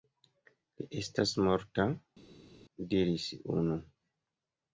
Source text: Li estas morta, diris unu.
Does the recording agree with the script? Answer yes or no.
yes